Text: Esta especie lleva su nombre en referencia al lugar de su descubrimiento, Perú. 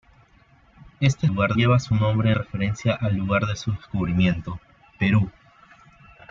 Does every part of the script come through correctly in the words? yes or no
no